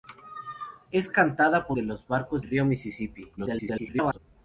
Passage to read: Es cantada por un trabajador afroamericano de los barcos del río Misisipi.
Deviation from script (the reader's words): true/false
true